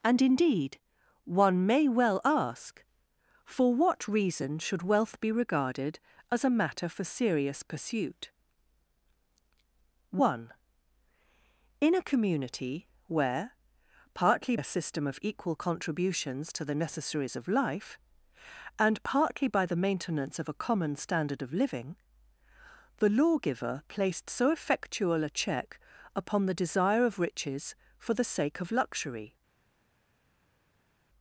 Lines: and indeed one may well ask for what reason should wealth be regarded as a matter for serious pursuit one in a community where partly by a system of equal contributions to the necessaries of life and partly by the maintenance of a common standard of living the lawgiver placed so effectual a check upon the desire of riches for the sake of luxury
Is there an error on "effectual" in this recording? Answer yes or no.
no